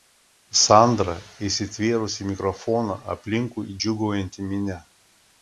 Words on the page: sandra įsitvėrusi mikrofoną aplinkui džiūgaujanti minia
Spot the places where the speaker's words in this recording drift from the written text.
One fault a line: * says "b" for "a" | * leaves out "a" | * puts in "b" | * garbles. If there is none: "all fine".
all fine